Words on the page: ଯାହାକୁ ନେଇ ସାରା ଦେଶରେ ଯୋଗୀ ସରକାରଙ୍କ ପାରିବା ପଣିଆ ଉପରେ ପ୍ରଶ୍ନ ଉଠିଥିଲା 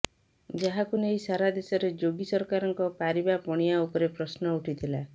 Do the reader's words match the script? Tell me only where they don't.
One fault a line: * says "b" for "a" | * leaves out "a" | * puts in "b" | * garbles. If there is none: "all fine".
all fine